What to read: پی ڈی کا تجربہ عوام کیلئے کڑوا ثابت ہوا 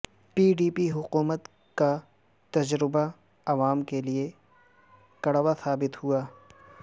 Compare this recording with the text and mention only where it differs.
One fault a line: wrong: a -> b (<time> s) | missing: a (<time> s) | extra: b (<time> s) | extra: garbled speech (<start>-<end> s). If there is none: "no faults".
extra: پی حکومت (0.8 s)